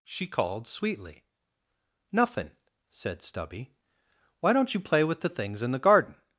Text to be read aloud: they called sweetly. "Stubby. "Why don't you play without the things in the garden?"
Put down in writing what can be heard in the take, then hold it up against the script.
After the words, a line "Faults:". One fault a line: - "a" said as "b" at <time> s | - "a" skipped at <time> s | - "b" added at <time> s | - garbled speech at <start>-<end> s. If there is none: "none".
she called sweetly. "Nuffin'," said Stubby. "Why don't you play with the things in the garden?"
Faults:
- "they" said as "she" at 0.0 s
- "Nuffin said" added at 2.1 s
- "without" said as "with" at 5.0 s